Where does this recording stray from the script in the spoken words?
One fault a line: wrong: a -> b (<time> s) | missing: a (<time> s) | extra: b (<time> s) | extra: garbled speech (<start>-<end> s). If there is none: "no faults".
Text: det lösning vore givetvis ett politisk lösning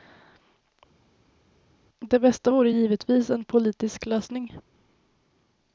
wrong: lösning -> bästa (2.2 s)
wrong: ett -> en (3.3 s)